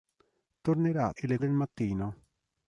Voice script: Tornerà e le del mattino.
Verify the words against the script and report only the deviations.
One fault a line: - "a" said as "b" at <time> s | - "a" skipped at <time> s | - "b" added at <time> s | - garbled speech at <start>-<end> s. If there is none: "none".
none